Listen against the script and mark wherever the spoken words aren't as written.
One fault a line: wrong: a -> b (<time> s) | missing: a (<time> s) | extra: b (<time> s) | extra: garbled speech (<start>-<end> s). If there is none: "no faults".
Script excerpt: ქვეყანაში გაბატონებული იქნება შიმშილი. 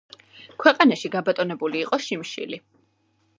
wrong: იქნება -> იყო (1.8 s)